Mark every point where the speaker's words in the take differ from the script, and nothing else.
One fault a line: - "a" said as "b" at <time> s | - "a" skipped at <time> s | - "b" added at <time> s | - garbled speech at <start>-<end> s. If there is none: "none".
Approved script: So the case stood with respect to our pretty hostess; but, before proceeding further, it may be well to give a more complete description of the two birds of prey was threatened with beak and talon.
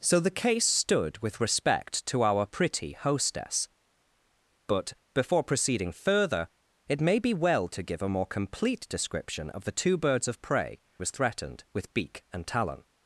none